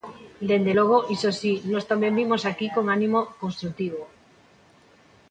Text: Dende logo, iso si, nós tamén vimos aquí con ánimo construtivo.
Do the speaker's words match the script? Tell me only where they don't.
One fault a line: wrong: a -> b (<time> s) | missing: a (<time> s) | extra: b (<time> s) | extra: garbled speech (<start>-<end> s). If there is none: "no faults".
no faults